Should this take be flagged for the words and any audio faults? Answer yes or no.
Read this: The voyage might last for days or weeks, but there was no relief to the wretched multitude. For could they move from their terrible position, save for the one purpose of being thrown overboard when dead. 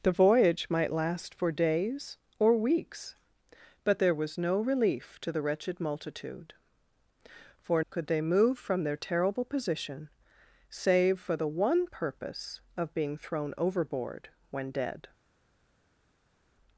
no